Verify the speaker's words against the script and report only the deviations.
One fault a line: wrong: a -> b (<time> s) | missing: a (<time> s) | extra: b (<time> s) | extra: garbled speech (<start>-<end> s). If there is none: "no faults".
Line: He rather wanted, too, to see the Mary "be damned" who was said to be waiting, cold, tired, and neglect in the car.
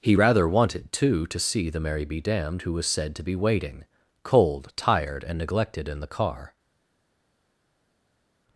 wrong: neglect -> neglected (5.4 s)